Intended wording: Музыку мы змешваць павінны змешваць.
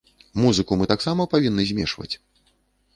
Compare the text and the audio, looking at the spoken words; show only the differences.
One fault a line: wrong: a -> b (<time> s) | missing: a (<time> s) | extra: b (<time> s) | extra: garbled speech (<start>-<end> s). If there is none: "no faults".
wrong: змешваць -> таксама (0.9 s)